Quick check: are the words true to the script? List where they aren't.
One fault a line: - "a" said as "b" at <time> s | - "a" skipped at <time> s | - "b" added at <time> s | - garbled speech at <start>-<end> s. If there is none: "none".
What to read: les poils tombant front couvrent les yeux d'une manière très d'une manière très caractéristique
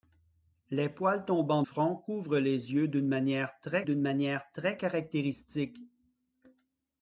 none